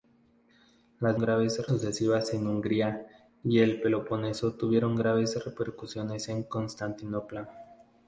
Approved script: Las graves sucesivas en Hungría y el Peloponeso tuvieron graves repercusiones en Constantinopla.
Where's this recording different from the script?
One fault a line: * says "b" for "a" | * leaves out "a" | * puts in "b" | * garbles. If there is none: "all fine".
all fine